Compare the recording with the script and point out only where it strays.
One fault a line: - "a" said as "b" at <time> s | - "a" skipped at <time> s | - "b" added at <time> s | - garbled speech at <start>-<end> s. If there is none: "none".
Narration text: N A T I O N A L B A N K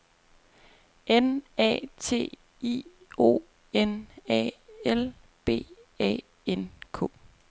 none